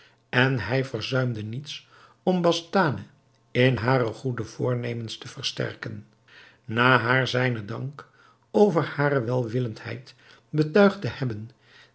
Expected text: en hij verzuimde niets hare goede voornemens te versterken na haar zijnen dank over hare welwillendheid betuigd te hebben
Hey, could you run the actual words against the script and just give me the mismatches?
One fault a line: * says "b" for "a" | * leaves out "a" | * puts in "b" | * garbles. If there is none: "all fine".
* puts in "om bastane in"